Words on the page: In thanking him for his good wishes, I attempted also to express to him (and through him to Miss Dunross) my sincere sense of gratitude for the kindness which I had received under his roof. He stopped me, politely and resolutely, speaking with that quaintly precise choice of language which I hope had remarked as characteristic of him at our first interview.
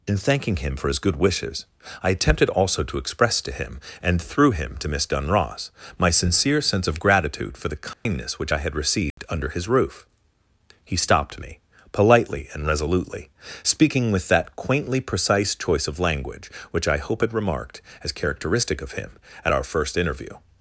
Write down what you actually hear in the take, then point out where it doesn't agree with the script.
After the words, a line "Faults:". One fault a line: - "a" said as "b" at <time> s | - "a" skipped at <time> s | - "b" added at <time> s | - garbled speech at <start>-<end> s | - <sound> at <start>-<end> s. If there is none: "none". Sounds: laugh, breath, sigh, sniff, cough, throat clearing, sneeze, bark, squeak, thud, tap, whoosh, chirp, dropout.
In thanking him for his good wishes, I attempted also to express to him (and through him to Miss Dunross) my sincere sense of gratitude for the kindness which I had received under his roof. He stopped me, politely and resolutely, speaking with that quaintly precise choice of language which I hope had remarked as characteristic of him at our first interview.
Faults:
- dropout at 7.9-8.1 s
- dropout at 9.1-9.2 s